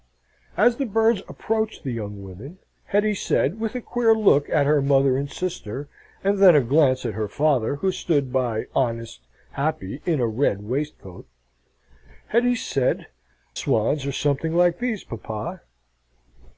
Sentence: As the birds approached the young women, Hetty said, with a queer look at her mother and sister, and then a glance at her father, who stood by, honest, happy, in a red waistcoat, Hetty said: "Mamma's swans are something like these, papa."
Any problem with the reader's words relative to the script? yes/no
yes